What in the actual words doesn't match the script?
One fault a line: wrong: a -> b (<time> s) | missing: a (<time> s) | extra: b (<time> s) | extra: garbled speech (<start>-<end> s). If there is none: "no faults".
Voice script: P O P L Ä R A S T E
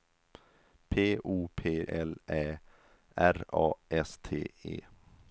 no faults